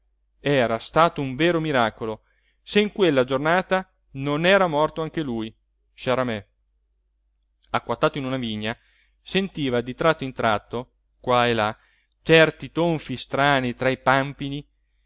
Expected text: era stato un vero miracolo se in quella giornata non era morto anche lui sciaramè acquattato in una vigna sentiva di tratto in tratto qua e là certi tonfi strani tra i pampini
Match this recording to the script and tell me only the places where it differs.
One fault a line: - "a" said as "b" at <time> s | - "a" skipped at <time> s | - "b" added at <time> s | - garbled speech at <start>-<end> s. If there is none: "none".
none